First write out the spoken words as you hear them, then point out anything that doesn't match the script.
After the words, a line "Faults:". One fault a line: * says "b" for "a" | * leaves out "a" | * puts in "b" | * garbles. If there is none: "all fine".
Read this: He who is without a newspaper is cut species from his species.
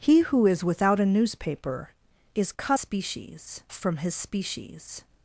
He who is without a newspaper is cut species from his species.
Faults:
all fine